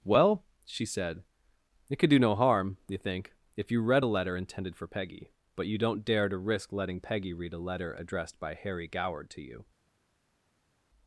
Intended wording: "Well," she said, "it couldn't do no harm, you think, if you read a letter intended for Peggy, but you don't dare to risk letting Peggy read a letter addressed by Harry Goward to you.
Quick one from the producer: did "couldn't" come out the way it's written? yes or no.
no